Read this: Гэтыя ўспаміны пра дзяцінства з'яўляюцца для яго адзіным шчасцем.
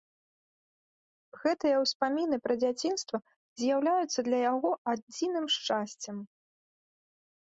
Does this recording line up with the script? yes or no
yes